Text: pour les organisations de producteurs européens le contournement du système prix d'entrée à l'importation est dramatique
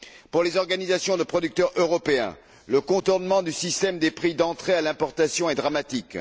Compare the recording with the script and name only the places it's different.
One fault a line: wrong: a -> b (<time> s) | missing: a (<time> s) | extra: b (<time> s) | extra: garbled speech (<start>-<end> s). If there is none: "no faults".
extra: des (4.0 s)